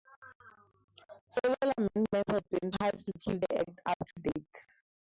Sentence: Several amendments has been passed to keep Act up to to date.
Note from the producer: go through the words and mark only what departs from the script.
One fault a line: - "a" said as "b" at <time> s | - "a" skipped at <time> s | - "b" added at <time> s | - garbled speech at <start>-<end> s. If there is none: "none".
- "has" said as "have" at 2.3 s
- "the" added at 3.4 s
- "to" skipped at 4.2 s